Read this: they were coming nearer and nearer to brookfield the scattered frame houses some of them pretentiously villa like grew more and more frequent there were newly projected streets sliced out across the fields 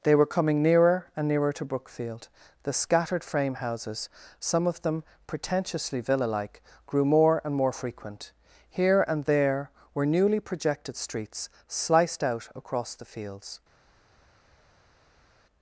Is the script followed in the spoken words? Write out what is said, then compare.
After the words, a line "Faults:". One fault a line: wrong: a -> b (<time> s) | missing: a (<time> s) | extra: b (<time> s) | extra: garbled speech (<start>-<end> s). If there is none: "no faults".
they were coming nearer and nearer to brookfield the scattered frame houses some of them pretentiously villa like grew more and more frequent here and there were newly projected streets sliced out across the fields
Faults:
extra: here and (8.7 s)